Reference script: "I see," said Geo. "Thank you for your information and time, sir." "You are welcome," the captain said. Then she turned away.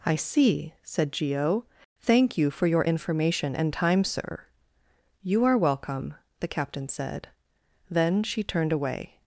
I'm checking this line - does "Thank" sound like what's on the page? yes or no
yes